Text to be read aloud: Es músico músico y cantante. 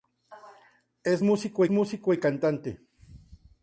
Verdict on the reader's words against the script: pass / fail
pass